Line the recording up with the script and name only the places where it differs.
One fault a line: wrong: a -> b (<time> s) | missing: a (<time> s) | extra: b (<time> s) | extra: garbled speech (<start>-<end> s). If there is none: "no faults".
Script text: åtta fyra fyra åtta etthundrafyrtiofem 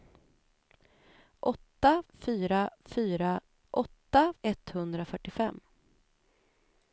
no faults